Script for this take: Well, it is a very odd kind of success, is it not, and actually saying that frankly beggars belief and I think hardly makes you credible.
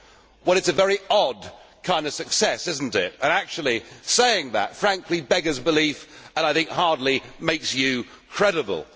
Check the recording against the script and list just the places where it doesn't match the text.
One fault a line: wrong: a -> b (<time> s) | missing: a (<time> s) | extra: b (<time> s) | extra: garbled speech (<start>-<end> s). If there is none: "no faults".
no faults